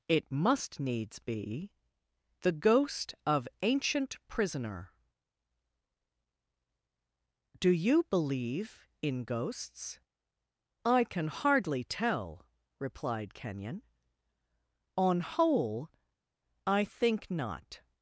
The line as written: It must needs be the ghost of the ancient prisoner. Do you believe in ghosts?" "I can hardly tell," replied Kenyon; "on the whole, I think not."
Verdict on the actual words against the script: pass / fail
fail